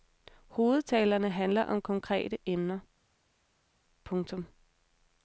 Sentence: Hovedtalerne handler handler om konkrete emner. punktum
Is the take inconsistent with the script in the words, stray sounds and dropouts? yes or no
yes